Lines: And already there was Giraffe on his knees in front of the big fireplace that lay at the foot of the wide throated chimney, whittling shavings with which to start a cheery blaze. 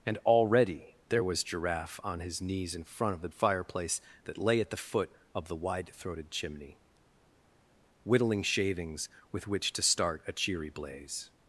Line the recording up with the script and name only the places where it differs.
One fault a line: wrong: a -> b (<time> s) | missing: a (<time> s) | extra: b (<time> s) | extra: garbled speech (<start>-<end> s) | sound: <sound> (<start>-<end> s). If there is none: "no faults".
missing: big (3.3 s)